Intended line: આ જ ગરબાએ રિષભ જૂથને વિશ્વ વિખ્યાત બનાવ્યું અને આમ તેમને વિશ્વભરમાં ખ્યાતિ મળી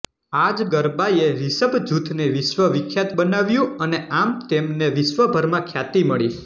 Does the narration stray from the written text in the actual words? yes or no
no